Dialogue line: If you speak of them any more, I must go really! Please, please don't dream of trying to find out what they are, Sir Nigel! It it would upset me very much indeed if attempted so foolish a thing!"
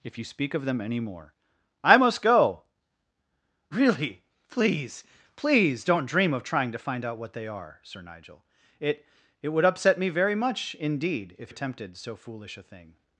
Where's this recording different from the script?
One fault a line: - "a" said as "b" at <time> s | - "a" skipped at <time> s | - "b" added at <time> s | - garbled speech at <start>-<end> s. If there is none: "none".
none